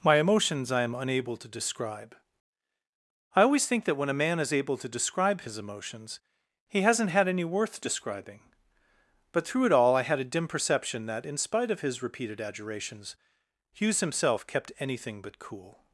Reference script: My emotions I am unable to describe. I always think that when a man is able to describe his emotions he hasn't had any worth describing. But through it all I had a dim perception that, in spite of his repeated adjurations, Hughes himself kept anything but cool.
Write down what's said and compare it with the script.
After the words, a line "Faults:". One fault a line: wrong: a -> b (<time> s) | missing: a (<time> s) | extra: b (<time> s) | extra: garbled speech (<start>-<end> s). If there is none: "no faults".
My emotions I am unable to describe. I always think that when a man is able to describe his emotions he hasn't had any worth describing. But through it all I had a dim perception that, in spite of his repeated adjurations, Hughes himself kept anything but cool.
Faults:
no faults